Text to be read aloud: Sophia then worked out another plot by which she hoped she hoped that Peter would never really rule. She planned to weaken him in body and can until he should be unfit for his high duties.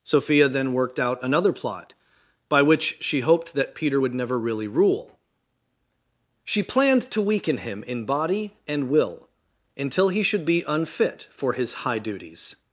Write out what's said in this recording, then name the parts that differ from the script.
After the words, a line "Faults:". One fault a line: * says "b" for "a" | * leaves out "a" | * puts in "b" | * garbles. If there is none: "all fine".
Sophia then worked out another plot by which she hoped that Peter would never really rule. She planned to weaken him in body and will until he should be unfit for his high duties.
Faults:
* leaves out "she hoped"
* says "will" for "can"